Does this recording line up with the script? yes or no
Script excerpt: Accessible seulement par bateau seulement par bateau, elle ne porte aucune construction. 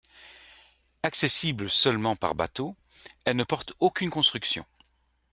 no